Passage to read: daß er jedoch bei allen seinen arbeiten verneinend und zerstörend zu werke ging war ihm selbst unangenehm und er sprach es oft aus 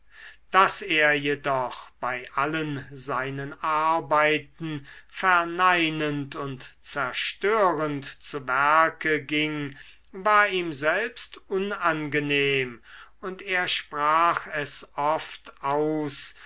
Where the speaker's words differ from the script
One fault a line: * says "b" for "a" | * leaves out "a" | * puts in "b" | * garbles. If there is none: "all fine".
all fine